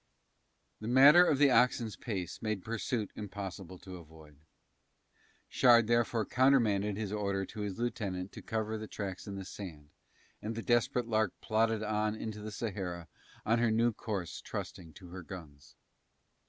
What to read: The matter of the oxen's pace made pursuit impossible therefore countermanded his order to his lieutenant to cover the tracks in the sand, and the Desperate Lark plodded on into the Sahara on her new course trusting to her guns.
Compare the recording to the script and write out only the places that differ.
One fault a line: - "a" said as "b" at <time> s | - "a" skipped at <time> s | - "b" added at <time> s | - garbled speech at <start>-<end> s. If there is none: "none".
- "to avoid Shard" added at 3.8 s